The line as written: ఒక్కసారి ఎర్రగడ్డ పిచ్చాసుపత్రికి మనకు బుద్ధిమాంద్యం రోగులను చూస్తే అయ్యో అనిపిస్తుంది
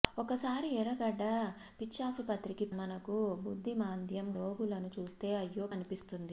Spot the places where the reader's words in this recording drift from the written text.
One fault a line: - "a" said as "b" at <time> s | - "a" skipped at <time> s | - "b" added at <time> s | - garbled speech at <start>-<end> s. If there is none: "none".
none